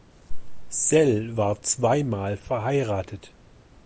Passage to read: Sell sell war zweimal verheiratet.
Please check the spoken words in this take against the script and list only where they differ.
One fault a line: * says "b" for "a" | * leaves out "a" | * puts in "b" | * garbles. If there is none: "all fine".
* leaves out "sell"